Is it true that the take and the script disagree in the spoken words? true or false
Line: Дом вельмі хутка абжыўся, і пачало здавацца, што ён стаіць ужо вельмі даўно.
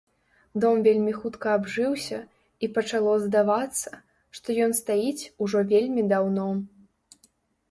false